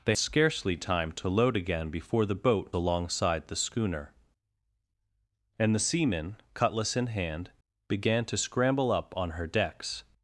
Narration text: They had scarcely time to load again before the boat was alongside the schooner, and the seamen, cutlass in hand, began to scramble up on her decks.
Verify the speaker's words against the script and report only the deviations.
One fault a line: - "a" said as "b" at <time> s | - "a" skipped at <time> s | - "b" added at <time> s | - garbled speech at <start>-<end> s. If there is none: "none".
- "had" skipped at 0.1 s
- "was" skipped at 2.7 s